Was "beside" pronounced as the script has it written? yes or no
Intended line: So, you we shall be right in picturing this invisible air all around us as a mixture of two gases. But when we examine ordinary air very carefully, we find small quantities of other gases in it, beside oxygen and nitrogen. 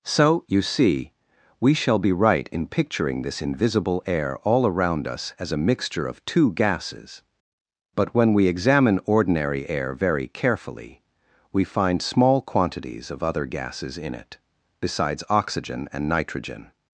no